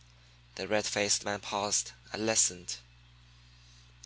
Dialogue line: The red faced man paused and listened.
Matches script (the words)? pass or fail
pass